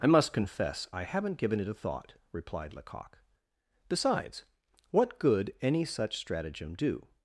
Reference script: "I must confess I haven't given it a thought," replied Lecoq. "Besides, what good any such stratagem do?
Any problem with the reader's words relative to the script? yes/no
no